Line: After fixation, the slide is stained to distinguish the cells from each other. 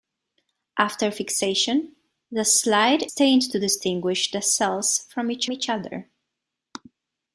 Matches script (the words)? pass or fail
fail